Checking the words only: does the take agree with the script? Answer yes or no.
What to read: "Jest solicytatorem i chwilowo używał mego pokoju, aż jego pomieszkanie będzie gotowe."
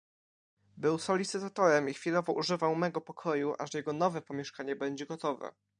no